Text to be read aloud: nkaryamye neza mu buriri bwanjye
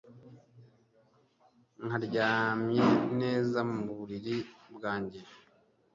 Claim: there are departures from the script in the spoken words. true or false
false